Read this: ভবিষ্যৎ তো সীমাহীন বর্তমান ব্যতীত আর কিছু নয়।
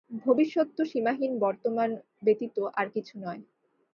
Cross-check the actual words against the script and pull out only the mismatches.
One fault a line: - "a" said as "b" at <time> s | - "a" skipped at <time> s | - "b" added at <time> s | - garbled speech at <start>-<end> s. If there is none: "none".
none